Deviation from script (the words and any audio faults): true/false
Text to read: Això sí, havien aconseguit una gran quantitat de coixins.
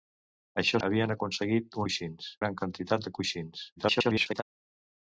true